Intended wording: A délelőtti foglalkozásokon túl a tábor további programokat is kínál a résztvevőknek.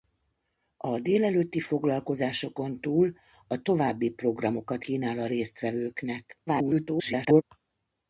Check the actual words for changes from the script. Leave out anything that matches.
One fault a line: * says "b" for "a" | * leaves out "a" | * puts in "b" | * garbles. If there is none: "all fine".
* leaves out "tábor"
* leaves out "is"
* garbles